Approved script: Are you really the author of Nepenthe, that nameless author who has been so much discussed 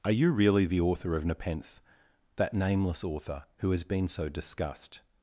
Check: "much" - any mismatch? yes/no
yes